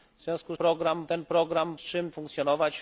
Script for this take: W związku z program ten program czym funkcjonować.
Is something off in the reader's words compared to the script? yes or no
no